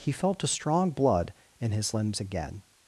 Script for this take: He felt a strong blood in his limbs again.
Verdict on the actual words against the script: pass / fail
pass